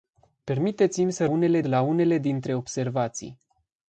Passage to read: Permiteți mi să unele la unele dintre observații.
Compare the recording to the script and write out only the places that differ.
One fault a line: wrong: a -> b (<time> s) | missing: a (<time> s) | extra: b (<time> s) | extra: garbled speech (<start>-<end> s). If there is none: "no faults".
no faults